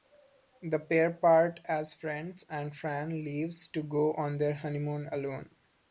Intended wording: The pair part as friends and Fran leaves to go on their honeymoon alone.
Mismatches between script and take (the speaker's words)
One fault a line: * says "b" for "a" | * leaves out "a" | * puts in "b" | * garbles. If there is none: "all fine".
all fine